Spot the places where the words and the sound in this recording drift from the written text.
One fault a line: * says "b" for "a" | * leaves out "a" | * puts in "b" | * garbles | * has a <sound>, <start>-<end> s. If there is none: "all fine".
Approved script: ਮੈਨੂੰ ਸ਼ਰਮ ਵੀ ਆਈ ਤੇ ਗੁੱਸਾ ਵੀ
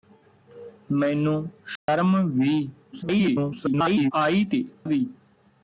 * has a dropout, 1.8-1.9 s
* garbles
* leaves out "ਗੁੱਸਾ"